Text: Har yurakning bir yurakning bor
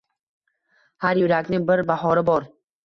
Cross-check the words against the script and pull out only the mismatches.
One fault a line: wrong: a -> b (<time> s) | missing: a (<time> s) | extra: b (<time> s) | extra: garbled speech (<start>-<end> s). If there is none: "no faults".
wrong: yurakning -> bahori (1.9 s)